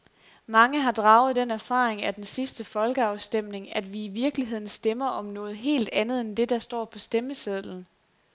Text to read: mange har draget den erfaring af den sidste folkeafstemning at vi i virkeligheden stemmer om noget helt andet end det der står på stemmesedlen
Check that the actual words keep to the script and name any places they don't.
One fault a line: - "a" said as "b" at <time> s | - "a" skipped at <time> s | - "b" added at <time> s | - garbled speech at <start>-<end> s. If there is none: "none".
none